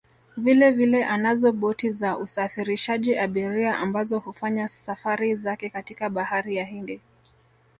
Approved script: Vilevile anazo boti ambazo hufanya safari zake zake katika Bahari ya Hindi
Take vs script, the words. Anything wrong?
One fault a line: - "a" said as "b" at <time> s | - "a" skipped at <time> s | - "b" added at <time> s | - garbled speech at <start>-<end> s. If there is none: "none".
- "za usafirishaji abiria" added at 1.9 s
- "zake" skipped at 5.7 s